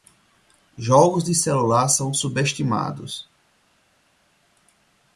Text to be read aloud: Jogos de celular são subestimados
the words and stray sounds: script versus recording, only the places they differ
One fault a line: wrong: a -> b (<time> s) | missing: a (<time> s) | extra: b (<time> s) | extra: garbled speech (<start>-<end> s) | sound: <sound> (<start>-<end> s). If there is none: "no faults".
no faults